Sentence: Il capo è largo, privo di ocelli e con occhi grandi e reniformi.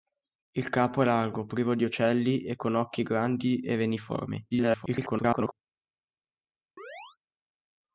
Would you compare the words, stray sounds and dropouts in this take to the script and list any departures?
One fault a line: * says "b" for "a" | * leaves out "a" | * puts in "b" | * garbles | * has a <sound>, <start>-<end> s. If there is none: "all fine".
* garbles
* has a chirp, 6.8-7.2 s